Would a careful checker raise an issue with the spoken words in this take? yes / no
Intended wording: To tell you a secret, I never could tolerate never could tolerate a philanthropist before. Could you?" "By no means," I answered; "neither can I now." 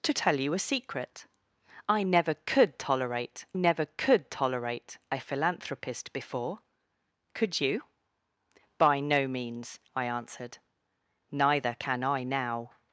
no